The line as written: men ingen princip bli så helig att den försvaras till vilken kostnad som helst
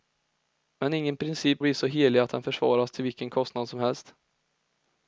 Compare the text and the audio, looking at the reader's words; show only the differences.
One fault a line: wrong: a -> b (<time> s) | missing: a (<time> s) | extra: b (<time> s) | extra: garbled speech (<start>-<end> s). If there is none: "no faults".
no faults